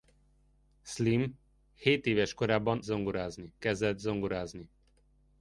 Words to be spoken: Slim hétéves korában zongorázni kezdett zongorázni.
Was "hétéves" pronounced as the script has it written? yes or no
yes